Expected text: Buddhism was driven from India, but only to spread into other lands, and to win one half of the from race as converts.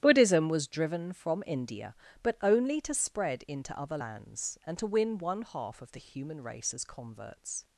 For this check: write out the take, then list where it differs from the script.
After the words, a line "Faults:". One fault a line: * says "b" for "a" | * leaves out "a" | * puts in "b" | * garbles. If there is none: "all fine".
Buddhism was driven from India, but only to spread into other lands, and to win one half of the human race as converts.
Faults:
* says "human" for "from"